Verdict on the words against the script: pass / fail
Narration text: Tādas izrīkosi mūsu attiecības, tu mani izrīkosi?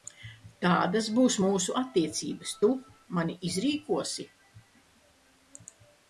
fail